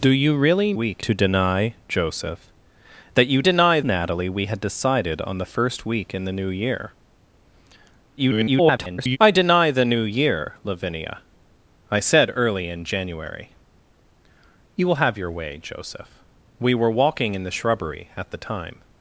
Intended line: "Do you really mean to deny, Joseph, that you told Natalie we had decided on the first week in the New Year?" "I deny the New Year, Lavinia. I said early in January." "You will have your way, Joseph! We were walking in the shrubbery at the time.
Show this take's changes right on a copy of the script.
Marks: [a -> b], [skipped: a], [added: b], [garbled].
"Do you really [mean -> week] to deny, Joseph, that you [told -> deny] Natalie we had decided on the first week in the New Year?" [garbled] "I deny the New Year, Lavinia. I said early in January." "You will have your way, Joseph! We were walking in the shrubbery at the time.